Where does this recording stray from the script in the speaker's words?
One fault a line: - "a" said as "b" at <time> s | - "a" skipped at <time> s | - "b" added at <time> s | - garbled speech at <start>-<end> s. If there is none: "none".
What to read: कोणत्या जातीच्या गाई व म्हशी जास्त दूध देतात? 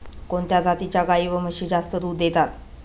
none